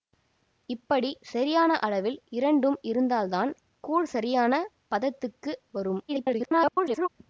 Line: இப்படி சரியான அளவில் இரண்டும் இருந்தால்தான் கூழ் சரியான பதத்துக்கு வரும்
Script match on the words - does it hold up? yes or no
no